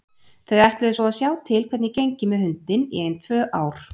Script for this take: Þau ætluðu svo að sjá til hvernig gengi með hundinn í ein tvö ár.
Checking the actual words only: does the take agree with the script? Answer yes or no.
yes